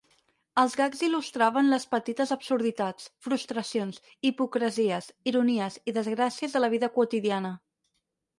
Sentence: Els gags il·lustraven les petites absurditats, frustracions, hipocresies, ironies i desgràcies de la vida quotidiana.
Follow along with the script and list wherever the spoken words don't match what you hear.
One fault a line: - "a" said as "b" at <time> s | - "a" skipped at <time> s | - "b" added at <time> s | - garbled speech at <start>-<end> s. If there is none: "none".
none